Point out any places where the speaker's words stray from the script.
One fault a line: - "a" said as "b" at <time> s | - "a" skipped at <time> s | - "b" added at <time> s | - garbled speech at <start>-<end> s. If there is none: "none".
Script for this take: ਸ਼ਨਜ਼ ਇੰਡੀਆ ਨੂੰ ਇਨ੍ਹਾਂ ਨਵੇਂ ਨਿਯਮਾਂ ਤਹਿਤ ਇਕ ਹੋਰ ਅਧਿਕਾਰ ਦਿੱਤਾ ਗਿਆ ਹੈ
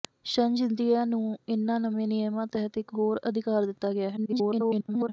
- garbled speech at 4.2-5.1 s